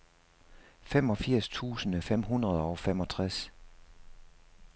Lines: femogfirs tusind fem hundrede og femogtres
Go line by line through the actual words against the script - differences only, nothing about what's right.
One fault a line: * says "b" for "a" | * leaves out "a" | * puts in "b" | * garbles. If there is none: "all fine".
all fine